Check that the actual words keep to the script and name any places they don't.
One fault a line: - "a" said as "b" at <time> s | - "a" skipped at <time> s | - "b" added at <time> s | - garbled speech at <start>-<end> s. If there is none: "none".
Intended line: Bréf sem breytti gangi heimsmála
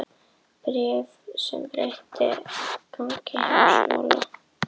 none